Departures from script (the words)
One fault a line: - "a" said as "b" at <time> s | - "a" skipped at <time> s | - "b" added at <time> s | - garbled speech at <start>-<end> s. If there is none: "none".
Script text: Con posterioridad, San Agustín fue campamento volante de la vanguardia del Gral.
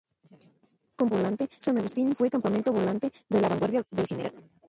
- "posterioridad" said as "volante" at 1.1 s